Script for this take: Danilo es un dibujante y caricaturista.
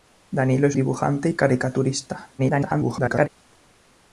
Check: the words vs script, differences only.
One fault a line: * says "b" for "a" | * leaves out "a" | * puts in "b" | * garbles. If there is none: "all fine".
* leaves out "un"
* garbles